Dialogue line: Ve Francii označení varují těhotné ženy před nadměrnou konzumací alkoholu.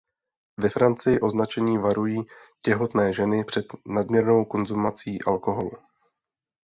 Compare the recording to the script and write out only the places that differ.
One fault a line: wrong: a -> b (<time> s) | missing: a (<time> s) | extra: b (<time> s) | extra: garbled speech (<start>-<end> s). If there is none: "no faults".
no faults